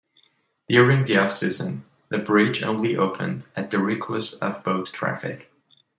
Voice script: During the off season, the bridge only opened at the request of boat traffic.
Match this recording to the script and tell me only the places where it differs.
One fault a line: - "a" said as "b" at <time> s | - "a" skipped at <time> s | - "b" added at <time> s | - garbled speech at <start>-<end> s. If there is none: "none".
none